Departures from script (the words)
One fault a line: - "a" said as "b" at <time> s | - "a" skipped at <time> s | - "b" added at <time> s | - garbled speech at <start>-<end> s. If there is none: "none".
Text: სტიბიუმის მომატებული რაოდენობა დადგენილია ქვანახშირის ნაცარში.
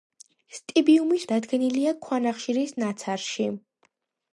- "მომატებული რაოდენობა" skipped at 1.2 s